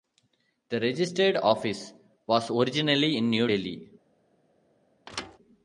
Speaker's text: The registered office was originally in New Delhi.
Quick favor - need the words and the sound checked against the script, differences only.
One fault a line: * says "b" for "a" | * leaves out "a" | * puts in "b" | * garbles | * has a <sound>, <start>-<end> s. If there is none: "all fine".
* has a thud, 5.1-5.4 s